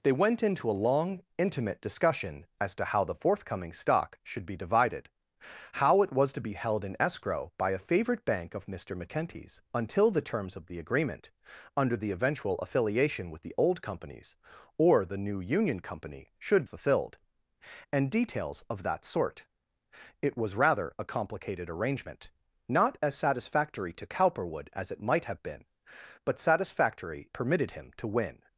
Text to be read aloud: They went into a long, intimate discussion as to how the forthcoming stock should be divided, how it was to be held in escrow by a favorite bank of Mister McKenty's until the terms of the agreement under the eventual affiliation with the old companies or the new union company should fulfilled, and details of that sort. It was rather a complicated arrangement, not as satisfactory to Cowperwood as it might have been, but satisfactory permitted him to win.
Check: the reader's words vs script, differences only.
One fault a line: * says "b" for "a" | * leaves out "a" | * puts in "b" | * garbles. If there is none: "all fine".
all fine